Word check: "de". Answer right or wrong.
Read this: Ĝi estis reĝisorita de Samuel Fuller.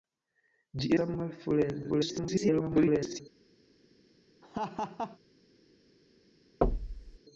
wrong